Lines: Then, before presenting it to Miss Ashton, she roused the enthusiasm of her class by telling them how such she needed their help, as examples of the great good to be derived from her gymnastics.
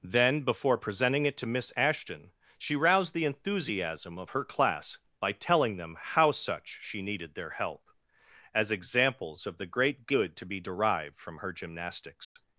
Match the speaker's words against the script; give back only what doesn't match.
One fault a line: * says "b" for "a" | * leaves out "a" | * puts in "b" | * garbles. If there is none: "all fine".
all fine